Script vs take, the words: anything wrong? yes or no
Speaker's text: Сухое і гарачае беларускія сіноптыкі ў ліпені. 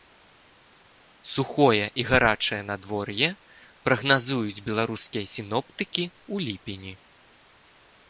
yes